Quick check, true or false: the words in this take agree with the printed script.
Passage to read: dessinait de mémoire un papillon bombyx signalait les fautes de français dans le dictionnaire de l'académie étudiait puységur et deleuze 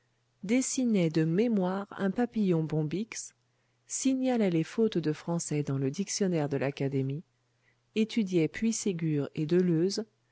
true